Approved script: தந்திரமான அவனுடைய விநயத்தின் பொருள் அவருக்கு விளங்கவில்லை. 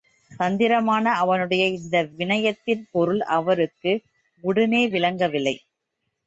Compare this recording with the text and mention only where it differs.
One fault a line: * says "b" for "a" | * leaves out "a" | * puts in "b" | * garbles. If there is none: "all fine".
* puts in "இந்த"
* puts in "உடனே"